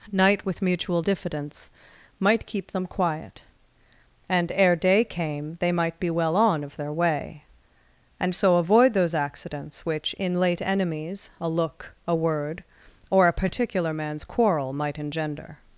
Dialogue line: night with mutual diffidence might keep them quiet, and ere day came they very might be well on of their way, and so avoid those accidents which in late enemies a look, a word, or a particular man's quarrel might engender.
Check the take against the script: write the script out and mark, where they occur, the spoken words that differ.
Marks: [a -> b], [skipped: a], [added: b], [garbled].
night with mutual diffidence might keep them quiet, and ere day came they [skipped: very] might be well on of their way, and so avoid those accidents which in late enemies a look, a word, or a particular man's quarrel might engender.